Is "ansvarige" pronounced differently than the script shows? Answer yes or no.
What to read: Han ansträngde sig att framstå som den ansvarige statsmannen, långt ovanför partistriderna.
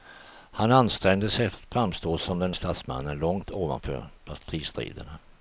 yes